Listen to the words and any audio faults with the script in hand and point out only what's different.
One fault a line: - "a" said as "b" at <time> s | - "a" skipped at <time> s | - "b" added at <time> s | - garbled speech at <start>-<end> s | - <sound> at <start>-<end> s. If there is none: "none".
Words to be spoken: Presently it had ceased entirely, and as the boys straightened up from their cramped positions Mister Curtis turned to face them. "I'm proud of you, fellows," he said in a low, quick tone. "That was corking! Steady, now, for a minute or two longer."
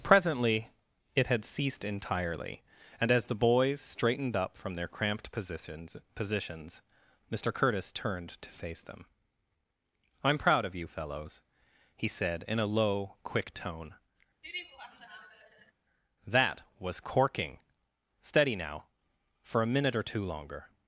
- "positions" added at 6.2 s
- laugh at 14.4-15.7 s